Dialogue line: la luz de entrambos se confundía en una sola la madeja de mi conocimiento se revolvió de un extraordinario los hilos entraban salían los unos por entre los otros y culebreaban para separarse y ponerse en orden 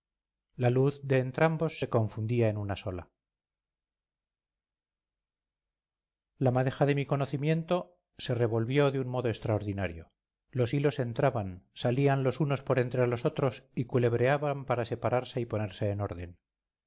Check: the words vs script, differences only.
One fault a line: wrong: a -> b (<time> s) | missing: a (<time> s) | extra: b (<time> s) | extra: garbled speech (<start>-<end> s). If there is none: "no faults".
extra: modo (9.1 s)